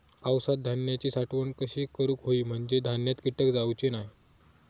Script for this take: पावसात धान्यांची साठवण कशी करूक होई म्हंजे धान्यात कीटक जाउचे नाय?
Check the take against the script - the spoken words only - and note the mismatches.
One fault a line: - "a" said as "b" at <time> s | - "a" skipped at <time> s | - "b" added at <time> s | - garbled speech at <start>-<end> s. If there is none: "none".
none